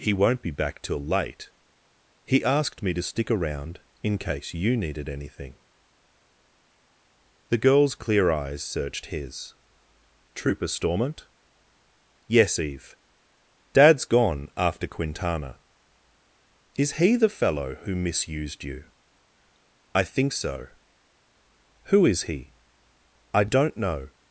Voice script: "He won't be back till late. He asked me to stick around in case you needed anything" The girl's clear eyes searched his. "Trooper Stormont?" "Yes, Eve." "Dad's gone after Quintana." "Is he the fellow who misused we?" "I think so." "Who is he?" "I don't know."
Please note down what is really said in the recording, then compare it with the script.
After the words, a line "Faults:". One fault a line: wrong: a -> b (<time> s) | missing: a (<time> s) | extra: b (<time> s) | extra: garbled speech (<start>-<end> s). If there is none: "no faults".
"He won't be back till late. He asked me to stick around in case you needed anything" The girl's clear eyes searched his. "Trooper Stormont?" "Yes, Eve." "Dad's gone after Quintana." "Is he the fellow who misused you?" "I think so." "Who is he?" "I don't know."
Faults:
wrong: we -> you (18.6 s)